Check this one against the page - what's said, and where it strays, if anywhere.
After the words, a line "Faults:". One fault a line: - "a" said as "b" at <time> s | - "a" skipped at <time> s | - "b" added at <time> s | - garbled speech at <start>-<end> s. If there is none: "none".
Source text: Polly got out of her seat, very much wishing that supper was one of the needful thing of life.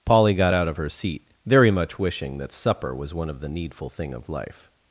Polly got out of her seat, very much wishing that supper was one of the needful thing of life.
Faults:
none